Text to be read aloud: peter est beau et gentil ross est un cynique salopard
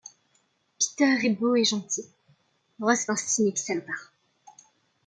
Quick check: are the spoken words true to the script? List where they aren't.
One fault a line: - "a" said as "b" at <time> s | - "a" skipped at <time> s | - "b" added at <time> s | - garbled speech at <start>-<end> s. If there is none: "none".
none